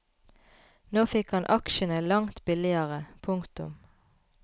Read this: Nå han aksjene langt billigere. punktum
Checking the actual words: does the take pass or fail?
fail